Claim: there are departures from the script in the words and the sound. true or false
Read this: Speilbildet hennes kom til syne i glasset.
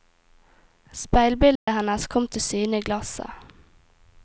true